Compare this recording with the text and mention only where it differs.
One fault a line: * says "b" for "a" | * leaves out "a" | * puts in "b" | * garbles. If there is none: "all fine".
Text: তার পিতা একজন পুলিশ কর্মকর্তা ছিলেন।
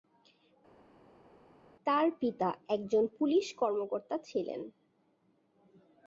all fine